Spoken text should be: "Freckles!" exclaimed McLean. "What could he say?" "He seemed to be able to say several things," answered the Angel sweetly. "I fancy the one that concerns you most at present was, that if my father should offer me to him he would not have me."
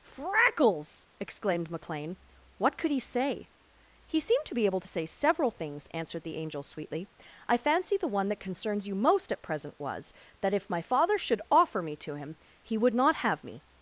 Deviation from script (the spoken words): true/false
false